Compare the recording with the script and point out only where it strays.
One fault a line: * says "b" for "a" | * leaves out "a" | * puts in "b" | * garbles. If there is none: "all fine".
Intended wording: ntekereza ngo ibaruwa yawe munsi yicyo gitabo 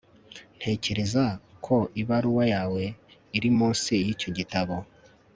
* says "ko" for "ngo"
* puts in "iri"